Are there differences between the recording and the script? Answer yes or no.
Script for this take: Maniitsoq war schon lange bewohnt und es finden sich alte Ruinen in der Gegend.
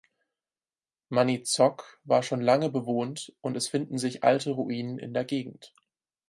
no